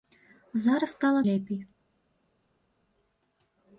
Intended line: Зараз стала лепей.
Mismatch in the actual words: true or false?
false